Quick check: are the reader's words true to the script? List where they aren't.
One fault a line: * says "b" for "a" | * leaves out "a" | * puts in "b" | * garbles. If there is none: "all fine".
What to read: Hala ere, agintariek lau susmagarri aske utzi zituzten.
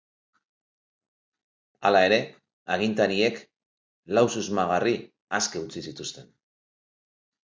all fine